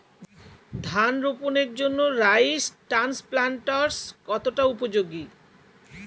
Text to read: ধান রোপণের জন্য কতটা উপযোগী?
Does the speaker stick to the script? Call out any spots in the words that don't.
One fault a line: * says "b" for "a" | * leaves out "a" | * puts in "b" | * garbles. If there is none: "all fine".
* puts in "রাইস ট্রান্সপ্লান্টারস্"